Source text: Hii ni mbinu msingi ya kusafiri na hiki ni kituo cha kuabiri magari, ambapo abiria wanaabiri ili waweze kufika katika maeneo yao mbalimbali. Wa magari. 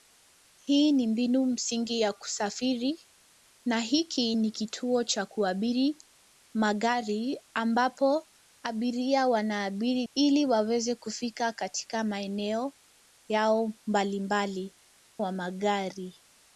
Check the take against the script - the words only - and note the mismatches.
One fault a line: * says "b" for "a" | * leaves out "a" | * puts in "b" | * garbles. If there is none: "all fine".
all fine